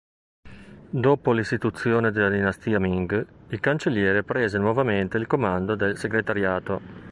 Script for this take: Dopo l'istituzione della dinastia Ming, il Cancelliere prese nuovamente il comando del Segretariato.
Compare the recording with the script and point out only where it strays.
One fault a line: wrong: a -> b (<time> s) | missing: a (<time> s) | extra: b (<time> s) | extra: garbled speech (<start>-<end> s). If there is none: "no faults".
no faults